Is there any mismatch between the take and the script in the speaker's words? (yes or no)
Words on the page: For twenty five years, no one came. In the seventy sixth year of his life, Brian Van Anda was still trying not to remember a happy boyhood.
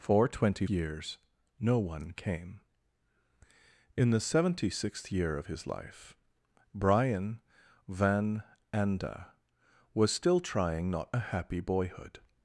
yes